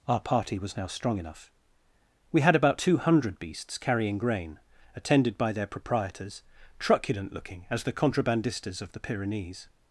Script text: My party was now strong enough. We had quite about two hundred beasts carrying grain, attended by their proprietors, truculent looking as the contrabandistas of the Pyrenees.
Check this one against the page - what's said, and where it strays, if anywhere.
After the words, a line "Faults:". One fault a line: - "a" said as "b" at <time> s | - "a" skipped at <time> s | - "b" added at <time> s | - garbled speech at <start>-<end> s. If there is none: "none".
Our party was now strong enough. We had about two hundred beasts carrying grain, attended by their proprietors, truculent looking as the contrabandistas of the Pyrenees.
Faults:
- "My" said as "Our" at 0.1 s
- "quite" skipped at 2.6 s